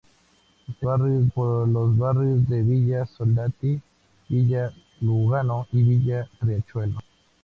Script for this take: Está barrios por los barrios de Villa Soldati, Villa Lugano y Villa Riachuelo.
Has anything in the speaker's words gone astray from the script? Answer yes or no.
no